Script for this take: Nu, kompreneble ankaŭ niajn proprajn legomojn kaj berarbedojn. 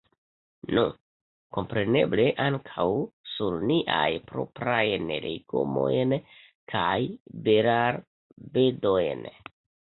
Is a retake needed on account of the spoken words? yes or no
yes